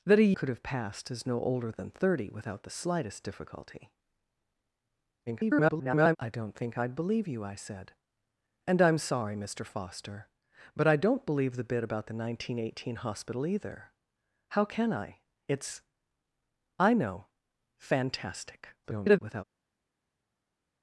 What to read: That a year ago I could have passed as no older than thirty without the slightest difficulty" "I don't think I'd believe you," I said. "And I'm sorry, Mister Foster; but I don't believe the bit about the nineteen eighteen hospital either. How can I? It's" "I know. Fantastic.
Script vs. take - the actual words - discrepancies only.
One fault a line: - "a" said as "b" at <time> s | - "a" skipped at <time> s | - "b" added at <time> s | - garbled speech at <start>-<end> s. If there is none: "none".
- "year ago I" skipped at 0.3 s
- garbled speech at 5.3-6.2 s
- garbled speech at 18.8-19.4 s